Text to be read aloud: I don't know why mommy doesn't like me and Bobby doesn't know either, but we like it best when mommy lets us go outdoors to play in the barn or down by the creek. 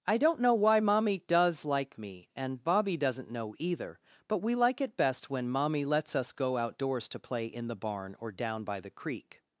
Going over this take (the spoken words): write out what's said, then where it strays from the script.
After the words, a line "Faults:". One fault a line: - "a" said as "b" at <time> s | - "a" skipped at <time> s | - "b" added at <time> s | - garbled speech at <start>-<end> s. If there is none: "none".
I don't know why mommy does like me and Bobby doesn't know either, but we like it best when mommy lets us go outdoors to play in the barn or down by the creek.
Faults:
- "doesn't" said as "does" at 1.3 s